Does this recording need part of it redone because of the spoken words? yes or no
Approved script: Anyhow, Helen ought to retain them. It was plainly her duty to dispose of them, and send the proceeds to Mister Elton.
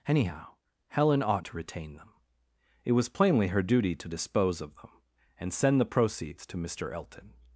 no